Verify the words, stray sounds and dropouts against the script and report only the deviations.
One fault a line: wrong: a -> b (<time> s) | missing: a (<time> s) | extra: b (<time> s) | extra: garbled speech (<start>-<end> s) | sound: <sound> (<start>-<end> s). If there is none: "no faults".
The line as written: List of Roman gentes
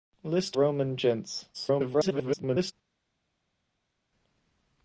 missing: of (0.6 s)
extra: garbled speech (1.5-2.7 s)